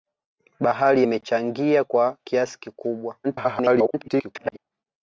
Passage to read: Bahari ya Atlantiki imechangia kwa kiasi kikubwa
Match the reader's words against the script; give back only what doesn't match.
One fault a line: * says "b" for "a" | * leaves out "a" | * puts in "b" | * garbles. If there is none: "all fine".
* leaves out "ya Atlantiki"
* garbles